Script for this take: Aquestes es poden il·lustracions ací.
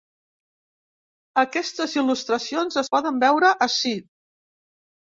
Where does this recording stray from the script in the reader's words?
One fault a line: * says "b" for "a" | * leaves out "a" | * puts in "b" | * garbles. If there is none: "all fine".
* puts in "il·lustracions"
* says "veure" for "il·lustracions"